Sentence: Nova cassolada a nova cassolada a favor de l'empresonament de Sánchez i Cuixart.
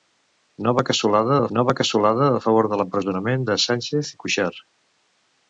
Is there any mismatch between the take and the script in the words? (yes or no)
no